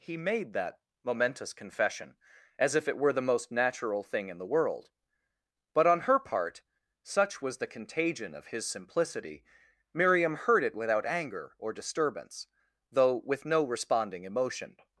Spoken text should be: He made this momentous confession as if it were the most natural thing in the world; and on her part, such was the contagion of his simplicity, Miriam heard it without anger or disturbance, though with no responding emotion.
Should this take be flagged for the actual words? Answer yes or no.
yes